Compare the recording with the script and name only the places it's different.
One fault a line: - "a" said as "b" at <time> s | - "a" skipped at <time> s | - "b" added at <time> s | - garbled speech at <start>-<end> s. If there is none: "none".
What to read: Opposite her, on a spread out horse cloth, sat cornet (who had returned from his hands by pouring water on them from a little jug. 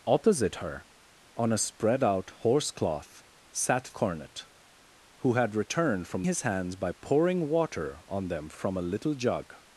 none